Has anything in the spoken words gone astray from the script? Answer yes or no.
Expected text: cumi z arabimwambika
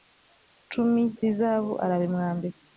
yes